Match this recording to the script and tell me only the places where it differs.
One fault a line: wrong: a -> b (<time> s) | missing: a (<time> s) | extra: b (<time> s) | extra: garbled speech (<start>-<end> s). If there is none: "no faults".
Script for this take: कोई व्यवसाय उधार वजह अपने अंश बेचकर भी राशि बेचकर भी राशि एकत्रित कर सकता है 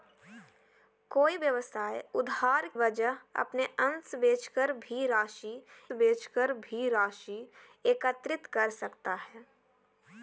no faults